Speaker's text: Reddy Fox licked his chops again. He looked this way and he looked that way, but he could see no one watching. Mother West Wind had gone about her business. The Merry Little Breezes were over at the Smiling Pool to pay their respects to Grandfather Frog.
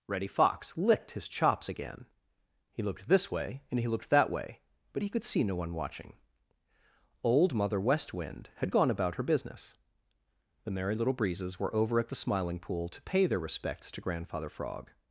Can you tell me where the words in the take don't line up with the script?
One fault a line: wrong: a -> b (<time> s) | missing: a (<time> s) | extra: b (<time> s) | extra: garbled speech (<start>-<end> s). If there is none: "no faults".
extra: Old (7.2 s)